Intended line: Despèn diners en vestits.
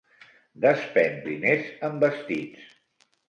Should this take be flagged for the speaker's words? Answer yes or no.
no